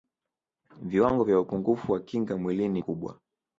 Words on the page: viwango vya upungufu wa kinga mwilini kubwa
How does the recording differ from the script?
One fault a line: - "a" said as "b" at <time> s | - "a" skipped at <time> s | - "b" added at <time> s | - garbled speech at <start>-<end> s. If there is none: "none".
none